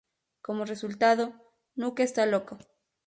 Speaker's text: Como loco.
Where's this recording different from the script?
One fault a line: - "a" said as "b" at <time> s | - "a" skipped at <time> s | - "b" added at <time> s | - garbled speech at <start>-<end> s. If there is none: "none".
- "resultado Nuke está" added at 0.7 s